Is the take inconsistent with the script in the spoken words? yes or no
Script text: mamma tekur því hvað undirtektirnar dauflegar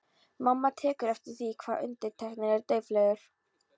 yes